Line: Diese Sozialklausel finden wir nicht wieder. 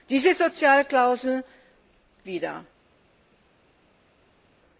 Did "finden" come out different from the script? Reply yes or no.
yes